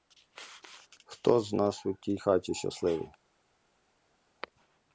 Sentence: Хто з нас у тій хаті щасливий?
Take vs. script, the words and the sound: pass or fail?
pass